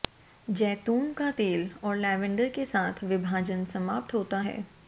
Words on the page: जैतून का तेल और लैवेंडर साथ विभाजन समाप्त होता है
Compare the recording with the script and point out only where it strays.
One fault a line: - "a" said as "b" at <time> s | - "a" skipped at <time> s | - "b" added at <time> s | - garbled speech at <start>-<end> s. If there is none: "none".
- "के" added at 2.5 s